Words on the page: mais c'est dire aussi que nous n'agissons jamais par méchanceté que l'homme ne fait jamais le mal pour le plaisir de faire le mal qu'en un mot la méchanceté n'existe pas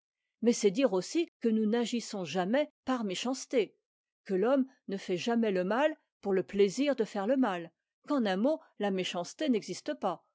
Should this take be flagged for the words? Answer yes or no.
no